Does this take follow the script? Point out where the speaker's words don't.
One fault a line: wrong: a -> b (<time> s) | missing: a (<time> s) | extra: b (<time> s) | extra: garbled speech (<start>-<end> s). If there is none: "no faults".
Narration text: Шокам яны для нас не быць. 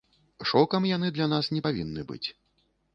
extra: павінны (1.7 s)